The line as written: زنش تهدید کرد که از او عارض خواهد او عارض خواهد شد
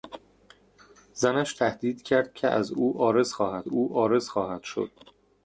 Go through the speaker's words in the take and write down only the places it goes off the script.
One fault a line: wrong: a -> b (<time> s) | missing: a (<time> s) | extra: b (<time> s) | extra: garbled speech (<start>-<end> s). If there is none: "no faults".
no faults